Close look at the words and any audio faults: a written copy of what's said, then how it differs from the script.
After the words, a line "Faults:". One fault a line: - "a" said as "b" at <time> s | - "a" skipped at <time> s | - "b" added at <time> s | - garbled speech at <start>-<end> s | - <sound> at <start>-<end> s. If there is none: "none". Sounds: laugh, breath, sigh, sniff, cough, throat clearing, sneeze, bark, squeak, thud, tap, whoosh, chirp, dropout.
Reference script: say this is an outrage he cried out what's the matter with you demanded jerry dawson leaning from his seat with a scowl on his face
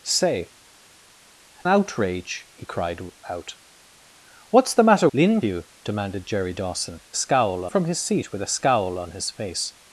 say outrage he cried out what's the matter leaning you demanded jerry dawson scowl from his seat with a scowl on his face
Faults:
- "this is an" skipped at 0.5 s
- "with" said as "leaning" at 5.1 s
- "leaning" said as "scowl" at 7.1 s